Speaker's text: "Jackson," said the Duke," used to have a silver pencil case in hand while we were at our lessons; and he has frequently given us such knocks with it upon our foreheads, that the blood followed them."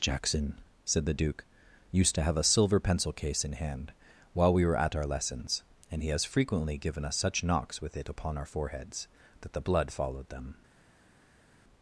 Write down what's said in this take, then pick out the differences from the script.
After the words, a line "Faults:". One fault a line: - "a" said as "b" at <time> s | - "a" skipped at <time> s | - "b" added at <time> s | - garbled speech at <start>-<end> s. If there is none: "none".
"Jackson," said the Duke," used to have a silver pencil case in hand while we were at our lessons; and he has frequently given us such knocks with it upon our foreheads, that the blood followed them."
Faults:
none